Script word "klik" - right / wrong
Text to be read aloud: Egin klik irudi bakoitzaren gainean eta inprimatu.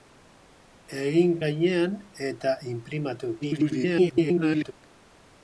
wrong